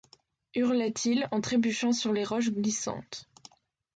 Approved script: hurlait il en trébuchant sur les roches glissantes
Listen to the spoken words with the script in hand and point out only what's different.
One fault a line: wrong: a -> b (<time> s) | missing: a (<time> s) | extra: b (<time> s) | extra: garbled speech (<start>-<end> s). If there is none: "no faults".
no faults